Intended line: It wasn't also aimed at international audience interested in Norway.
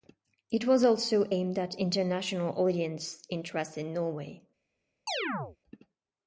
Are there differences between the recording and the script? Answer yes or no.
yes